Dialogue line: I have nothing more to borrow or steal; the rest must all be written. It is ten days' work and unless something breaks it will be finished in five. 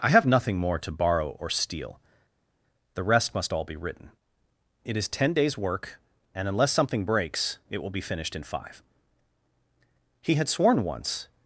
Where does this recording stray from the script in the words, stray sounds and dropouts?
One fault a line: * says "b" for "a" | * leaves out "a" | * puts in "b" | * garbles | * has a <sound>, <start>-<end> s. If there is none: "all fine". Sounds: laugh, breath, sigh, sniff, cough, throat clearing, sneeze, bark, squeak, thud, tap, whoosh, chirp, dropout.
* puts in "He had sworn once"